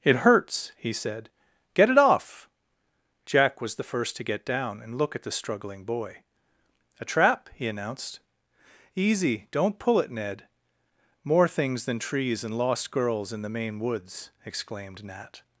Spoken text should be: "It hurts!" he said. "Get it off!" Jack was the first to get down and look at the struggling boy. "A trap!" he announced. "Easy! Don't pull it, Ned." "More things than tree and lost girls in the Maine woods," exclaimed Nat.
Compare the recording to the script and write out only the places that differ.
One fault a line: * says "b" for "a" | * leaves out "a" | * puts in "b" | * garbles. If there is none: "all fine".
* says "trees" for "tree"